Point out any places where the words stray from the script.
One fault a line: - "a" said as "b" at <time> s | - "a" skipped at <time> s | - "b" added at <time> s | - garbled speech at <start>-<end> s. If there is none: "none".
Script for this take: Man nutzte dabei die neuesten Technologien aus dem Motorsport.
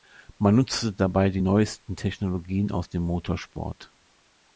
none